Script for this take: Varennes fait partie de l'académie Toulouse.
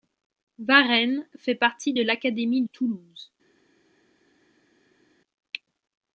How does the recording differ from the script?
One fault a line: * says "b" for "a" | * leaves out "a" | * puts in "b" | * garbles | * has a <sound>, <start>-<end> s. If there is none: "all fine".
all fine